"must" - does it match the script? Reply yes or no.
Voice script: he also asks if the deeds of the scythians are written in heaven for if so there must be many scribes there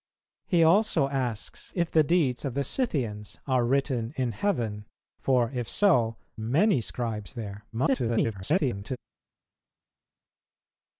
no